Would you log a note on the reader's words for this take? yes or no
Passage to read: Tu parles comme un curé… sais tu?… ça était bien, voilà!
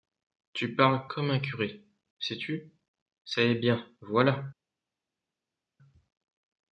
yes